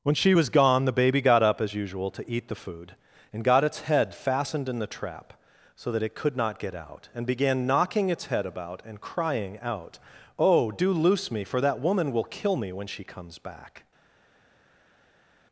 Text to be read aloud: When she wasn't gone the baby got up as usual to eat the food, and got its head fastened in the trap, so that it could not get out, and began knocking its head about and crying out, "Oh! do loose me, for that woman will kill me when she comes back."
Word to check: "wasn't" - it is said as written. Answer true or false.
false